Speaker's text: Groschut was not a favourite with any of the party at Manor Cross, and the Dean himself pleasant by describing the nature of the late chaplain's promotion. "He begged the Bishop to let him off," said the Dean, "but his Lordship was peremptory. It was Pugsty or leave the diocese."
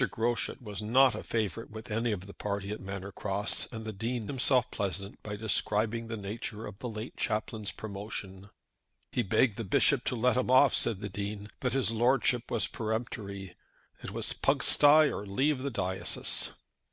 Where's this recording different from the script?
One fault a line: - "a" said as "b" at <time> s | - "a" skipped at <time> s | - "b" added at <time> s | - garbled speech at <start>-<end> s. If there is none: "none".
none